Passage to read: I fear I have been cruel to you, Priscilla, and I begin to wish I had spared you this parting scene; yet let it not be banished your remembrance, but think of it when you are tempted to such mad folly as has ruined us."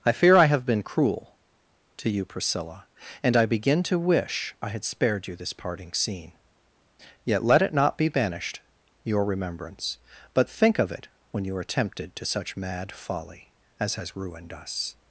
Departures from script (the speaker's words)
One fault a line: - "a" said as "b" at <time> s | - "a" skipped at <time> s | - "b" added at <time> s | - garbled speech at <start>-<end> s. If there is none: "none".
none